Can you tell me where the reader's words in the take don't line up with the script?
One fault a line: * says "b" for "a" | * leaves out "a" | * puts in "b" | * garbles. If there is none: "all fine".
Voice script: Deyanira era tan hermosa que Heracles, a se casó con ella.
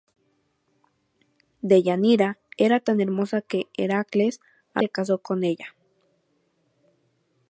all fine